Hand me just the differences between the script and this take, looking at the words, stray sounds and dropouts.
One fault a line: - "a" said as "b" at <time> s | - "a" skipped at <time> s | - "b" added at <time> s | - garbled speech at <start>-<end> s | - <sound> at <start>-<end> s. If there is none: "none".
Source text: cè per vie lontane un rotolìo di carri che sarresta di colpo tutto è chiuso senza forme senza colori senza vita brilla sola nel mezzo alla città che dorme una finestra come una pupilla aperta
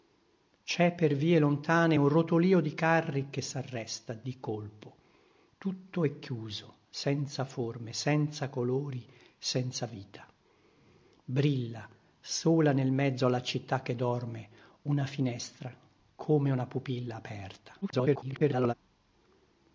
- garbled speech at 17.8-18.7 s